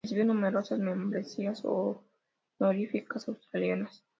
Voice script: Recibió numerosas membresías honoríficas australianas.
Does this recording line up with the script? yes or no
yes